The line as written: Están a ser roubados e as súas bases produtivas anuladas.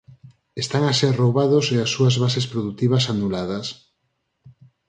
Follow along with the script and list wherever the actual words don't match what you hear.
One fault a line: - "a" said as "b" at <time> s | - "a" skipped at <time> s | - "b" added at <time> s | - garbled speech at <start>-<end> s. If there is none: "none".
none